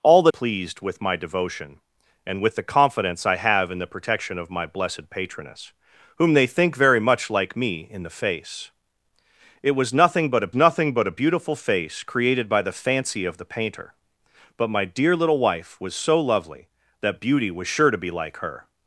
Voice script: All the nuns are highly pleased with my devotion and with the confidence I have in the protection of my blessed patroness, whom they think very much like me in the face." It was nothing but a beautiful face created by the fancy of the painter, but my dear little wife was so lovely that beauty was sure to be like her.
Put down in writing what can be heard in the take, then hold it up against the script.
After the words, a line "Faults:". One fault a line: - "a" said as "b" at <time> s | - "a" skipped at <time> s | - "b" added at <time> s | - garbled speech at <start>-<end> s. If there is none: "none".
All the pleased with my devotion and with the confidence I have in the protection of my blessed patroness, whom they think very much like me in the face." It was nothing but a nothing but a beautiful face created by the fancy of the painter, but my dear little wife was so lovely that beauty was sure to be like her.
Faults:
- "nuns are highly" skipped at 0.3 s
- "nothing but a" added at 10.5 s